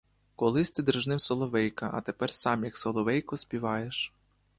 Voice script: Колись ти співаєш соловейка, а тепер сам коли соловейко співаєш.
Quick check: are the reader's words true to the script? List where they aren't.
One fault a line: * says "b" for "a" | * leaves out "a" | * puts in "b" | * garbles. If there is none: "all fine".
* says "дражнив" for "співаєш"
* says "як" for "коли"